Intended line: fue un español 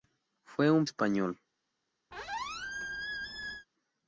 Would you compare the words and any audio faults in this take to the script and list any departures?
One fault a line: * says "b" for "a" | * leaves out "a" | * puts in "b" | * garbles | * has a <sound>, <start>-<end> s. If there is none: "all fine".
* has a squeak, 2.1-3.7 s